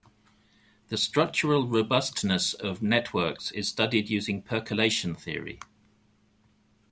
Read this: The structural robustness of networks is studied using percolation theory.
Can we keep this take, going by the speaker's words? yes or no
yes